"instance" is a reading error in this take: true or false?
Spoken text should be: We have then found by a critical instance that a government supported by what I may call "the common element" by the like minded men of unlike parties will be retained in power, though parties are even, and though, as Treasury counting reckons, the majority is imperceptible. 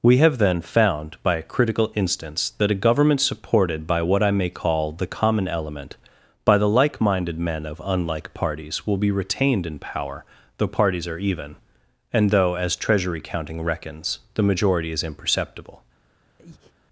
false